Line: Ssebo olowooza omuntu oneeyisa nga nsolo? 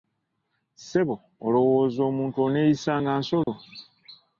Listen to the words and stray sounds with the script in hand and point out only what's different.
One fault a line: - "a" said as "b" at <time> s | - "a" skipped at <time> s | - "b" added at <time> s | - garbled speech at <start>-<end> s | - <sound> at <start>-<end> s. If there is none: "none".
- dropout at 3.4-3.5 s